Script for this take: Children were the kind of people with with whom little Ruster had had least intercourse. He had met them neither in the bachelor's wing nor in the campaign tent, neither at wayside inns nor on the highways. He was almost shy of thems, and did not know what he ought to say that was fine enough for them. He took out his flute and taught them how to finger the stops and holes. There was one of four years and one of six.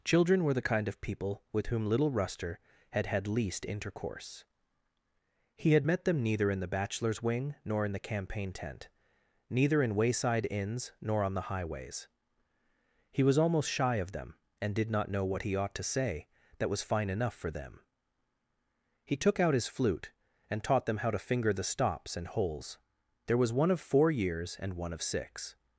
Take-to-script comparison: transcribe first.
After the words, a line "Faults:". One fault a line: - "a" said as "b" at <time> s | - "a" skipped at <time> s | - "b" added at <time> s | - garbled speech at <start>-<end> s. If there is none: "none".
Children were the kind of people with whom little Ruster had had least intercourse. He had met them neither in the bachelor's wing nor in the campaign tent, neither in wayside inns nor on the highways. He was almost shy of them, and did not know what he ought to say that was fine enough for them. He took out his flute and taught them how to finger the stops and holes. There was one of four years and one of six.
Faults:
- "with" skipped at 1.7 s
- "at" said as "in" at 9.8 s
- "thems" said as "them" at 14.1 s